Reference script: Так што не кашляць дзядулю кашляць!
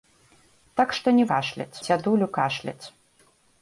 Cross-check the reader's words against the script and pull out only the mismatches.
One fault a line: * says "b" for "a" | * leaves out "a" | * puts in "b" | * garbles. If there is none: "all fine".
all fine